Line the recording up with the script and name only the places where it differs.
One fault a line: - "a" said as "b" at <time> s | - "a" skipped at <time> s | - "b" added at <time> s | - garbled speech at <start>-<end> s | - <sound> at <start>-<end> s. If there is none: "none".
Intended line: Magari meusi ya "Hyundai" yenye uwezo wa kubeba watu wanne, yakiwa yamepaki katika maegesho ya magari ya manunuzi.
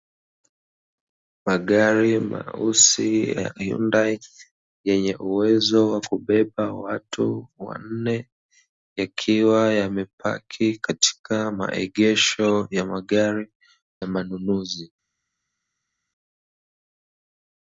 none